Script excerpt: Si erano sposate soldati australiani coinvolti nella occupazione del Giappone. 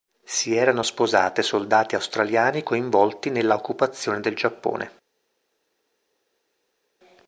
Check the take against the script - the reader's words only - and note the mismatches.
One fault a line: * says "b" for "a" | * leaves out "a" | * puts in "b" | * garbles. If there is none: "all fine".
all fine